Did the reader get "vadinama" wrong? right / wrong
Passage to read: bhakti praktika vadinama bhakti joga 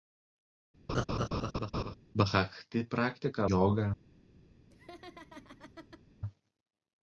wrong